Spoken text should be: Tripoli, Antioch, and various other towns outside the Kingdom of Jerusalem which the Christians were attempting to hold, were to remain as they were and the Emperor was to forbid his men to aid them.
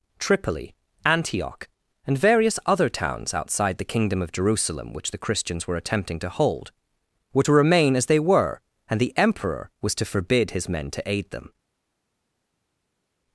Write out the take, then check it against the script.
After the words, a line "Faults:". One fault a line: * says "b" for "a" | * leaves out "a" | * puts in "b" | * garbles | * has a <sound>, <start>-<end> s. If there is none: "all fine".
Tripoli, Antioch, and various other towns outside the Kingdom of Jerusalem which the Christians were attempting to hold, were to remain as they were and the Emperor was to forbid his men to aid them.
Faults:
all fine